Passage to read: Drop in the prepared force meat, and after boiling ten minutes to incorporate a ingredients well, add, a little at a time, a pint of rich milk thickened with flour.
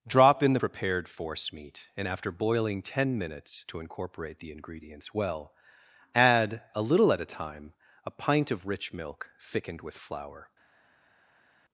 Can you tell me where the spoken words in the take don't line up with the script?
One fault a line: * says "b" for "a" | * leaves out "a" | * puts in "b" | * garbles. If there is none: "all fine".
* says "the" for "a"